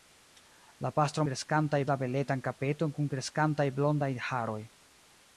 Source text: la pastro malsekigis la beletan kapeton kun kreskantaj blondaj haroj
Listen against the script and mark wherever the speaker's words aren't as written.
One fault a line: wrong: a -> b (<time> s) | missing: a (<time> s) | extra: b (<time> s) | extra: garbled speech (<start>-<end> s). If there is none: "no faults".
wrong: malsekigis -> kreskantaj (1.3 s)